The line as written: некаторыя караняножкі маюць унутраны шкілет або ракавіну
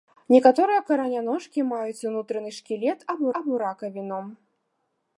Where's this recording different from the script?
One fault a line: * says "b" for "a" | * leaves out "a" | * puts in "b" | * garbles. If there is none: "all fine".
* puts in "або"